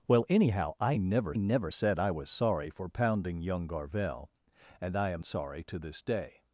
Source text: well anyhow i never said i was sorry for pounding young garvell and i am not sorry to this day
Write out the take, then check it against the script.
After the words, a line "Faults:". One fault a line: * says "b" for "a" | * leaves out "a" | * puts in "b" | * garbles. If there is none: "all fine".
well anyhow i never never said i was sorry for pounding young garvell and i am sorry to this day
Faults:
* puts in "never"
* leaves out "not"